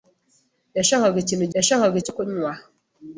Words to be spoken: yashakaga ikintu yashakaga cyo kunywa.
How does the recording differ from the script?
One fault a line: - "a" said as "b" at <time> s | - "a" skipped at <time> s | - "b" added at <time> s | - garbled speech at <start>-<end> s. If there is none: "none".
none